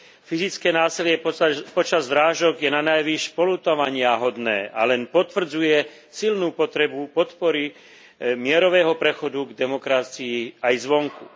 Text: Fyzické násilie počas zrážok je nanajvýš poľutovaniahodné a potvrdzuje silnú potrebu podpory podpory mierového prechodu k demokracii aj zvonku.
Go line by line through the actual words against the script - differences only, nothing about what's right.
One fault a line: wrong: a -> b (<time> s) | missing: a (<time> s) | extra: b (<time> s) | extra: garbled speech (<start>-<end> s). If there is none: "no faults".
extra: len (4.8 s)
missing: podpory (7.7 s)